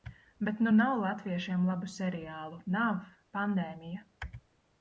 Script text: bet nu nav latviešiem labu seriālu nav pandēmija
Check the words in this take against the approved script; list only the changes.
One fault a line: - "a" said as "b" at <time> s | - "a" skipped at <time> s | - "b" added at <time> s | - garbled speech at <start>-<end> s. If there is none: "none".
none